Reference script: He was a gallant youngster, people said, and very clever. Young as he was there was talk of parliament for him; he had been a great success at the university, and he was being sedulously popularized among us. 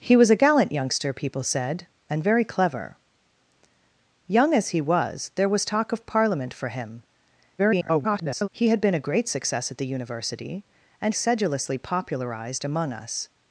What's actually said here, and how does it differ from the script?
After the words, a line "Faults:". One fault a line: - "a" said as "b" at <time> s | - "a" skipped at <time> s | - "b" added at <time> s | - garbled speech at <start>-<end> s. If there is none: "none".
He was a gallant youngster, people said, and very clever. Young as he was there was talk of parliament for him; [garbled] he had been a great success at the university, and sedulously popularized among us.
Faults:
- garbled speech at 7.6-8.5 s
- "he was being" skipped at 11.1 s